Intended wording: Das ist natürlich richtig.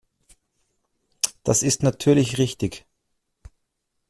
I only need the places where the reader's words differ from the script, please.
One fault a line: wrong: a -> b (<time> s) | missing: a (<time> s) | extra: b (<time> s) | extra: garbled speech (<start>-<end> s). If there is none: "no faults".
no faults